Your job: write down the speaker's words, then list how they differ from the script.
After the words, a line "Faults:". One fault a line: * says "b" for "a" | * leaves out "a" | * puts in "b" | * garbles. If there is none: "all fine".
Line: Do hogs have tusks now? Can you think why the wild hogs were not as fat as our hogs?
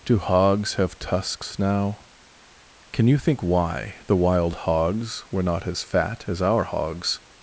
Do hogs have tusks now? Can you think why the wild hogs were not as fat as our hogs?
Faults:
all fine